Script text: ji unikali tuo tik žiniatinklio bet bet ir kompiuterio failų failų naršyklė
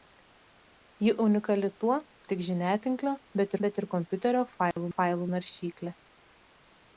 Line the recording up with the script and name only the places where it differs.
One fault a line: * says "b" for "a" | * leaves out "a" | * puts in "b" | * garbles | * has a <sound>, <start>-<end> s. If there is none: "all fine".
* has a dropout, 4.7-4.8 s